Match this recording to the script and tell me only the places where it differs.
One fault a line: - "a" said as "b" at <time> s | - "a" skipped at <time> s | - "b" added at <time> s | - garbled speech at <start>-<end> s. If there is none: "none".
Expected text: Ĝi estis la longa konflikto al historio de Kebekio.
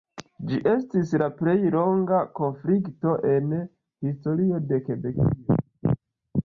- "plej" added at 1.4 s
- "al" said as "en" at 3.4 s